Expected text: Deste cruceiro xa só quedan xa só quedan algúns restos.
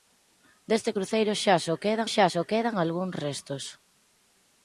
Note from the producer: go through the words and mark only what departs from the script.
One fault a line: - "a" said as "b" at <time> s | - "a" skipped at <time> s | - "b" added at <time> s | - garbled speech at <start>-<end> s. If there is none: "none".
none